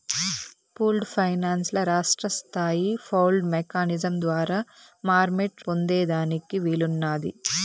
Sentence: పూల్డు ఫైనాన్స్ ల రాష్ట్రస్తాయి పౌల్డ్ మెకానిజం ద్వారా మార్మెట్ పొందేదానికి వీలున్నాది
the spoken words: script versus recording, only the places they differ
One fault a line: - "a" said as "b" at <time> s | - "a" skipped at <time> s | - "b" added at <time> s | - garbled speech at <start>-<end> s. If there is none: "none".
none